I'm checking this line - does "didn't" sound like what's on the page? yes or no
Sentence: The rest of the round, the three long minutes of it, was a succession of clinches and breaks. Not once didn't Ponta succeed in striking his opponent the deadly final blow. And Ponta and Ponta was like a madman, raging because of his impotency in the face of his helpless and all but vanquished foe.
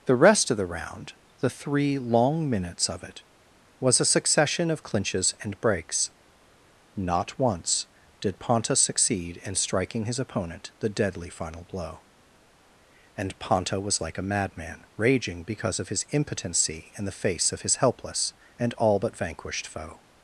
no